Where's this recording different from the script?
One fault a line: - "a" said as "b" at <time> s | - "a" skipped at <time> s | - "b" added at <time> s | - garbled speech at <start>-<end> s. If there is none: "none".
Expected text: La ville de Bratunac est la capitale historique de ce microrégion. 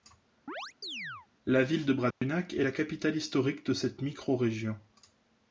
- "ce" said as "cette" at 3.7 s